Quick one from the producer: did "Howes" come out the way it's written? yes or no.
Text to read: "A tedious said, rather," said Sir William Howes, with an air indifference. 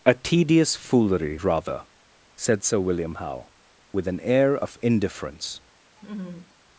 no